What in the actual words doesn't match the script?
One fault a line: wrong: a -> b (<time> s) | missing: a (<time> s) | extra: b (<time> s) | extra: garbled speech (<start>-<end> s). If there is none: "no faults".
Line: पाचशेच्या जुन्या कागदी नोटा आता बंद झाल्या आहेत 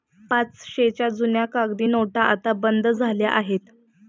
no faults